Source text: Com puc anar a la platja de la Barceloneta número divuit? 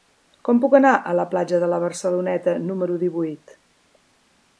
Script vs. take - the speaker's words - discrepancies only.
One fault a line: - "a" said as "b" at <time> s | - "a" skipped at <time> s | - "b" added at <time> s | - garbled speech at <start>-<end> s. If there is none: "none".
none